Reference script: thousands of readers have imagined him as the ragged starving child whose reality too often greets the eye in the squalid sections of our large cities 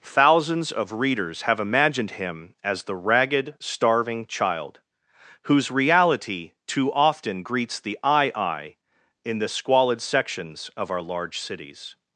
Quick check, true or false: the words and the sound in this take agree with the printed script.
false